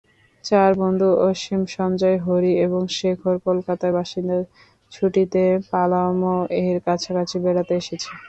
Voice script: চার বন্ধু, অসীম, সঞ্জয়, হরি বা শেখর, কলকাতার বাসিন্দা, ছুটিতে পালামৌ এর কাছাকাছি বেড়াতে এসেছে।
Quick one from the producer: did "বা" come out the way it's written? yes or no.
no